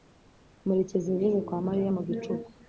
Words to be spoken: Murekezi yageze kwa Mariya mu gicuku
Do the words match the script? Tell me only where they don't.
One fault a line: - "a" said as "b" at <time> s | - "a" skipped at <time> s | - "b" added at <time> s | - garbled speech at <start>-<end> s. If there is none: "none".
none